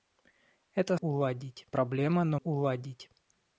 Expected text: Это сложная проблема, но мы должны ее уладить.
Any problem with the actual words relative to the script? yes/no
yes